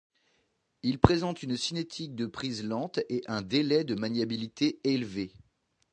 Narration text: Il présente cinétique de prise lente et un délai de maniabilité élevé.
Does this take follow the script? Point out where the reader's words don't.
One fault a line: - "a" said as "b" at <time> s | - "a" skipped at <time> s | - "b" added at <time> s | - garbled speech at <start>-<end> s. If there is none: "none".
- "une" added at 1.4 s